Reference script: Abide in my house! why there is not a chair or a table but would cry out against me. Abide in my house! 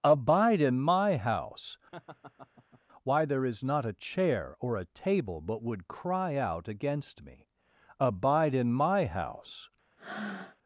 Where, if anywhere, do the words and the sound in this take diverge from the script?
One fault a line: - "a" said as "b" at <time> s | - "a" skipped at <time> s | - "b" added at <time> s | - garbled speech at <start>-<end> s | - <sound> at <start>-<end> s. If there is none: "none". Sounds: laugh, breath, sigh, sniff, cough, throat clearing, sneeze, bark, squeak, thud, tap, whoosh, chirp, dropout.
- laugh at 1.9-2.8 s
- breath at 10.0-10.6 s